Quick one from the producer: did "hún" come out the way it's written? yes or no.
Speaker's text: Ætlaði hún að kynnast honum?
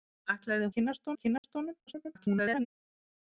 no